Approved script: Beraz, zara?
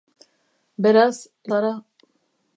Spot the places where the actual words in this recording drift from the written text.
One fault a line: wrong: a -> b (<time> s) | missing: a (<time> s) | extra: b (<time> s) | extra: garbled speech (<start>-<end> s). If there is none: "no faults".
no faults